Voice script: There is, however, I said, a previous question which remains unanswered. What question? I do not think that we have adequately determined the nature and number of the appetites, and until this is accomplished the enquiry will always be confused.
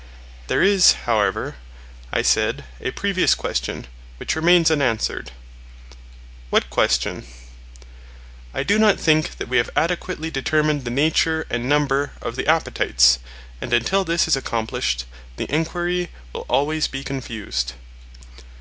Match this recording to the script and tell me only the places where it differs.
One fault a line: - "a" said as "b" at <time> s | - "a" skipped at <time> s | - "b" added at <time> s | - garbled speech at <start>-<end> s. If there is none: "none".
none